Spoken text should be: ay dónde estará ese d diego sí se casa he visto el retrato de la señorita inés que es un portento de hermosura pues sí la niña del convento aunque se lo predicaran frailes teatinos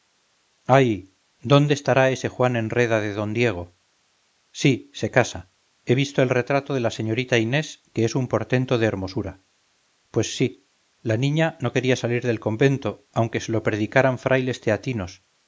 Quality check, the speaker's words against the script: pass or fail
fail